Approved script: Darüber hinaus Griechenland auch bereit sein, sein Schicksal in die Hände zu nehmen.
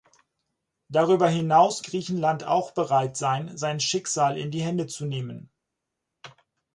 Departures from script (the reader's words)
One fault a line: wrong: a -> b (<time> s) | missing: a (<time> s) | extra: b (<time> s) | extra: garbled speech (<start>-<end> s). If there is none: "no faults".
no faults